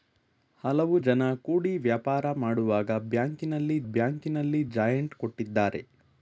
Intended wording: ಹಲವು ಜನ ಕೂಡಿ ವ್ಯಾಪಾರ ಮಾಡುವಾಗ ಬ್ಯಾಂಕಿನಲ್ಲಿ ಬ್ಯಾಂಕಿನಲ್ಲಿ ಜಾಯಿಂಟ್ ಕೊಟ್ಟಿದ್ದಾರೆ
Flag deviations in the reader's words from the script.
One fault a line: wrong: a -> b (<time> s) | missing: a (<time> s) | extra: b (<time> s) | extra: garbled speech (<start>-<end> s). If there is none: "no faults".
no faults